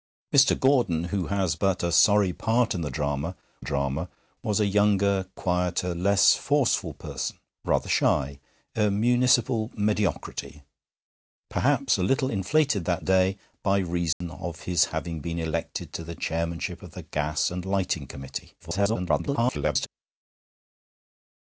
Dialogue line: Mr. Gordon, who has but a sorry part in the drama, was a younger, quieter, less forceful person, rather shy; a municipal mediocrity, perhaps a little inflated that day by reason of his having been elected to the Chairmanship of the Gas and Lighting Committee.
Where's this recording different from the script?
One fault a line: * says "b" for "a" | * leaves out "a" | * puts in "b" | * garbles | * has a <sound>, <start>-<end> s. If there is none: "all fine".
* puts in "drama"
* has a dropout, 14.1-14.2 s
* garbles